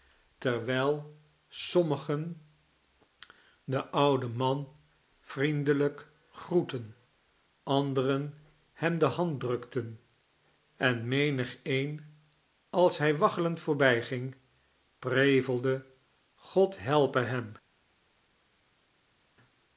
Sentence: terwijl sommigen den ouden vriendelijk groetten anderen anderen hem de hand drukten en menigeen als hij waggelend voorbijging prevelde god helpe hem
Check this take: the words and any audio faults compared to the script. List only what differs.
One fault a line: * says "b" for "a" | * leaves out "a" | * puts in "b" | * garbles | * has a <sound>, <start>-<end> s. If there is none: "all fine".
* puts in "man"
* leaves out "anderen"